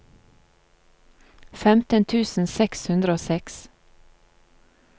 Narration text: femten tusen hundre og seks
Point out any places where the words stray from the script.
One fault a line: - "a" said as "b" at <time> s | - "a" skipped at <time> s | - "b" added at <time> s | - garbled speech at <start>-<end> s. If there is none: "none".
- "seks" added at 2.5 s